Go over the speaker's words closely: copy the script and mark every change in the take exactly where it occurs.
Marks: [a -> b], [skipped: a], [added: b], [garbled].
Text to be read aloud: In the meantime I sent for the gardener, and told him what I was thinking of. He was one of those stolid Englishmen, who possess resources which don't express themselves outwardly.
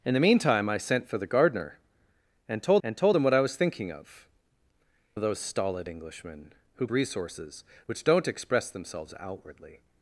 In the meantime I sent for the gardener, and told [added: and told] him what I was thinking of. [skipped: He was one] of those stolid Englishmen, who [skipped: possess] resources which don't express themselves outwardly.